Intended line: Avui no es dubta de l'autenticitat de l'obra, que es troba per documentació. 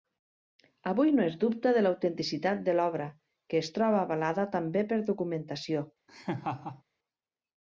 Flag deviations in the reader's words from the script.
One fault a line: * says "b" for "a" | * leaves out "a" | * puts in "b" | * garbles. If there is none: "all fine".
* puts in "avalada també"